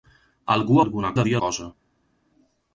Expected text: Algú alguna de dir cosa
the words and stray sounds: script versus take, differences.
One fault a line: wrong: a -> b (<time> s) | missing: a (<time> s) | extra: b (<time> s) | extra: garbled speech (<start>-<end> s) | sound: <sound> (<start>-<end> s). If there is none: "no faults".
no faults